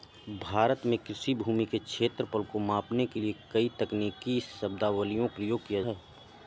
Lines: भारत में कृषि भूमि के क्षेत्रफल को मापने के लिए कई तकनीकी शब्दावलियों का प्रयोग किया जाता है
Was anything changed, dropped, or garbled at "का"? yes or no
yes